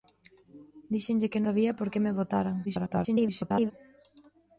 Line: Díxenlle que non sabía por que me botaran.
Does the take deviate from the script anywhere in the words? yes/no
yes